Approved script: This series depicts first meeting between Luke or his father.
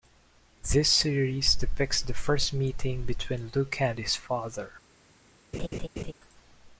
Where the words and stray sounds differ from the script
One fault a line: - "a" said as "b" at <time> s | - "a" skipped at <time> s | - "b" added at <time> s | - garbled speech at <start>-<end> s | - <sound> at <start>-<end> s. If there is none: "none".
- "the" added at 2.0 s
- "or" said as "and" at 3.8 s
- laugh at 5.5-6.1 s